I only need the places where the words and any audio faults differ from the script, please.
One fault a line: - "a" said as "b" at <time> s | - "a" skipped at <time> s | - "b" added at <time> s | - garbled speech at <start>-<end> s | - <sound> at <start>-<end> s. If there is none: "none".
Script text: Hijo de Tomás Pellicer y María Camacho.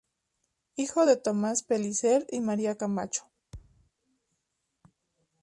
- thud at 3.5-3.9 s